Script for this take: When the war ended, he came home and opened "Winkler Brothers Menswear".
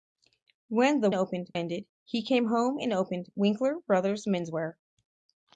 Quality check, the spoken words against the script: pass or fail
fail